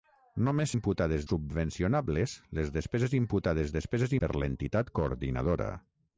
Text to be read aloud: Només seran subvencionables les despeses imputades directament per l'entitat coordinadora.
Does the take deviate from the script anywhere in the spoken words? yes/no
yes